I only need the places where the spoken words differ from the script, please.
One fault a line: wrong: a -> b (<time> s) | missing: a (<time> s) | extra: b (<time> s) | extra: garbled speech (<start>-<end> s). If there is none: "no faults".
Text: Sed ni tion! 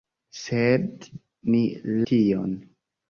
no faults